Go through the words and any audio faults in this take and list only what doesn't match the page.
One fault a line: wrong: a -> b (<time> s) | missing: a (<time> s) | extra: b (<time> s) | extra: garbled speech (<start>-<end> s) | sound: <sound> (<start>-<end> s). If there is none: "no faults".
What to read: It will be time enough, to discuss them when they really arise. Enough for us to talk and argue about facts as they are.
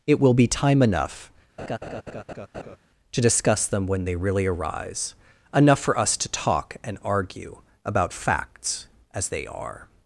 sound: laugh (1.6-2.8 s)